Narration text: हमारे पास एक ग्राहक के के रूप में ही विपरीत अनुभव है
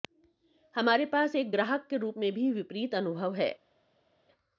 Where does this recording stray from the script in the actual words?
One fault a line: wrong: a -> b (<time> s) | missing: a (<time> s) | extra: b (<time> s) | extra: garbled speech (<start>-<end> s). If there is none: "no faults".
missing: के (2.0 s)
wrong: ही -> भी (2.3 s)